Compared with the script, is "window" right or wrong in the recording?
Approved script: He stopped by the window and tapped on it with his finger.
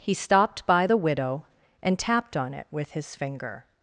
wrong